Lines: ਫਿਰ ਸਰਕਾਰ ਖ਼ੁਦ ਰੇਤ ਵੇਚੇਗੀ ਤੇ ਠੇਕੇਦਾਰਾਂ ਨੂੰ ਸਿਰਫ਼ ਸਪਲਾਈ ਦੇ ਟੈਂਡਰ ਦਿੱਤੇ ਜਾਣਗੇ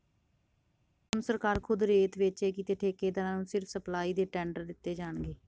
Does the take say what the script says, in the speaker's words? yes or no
no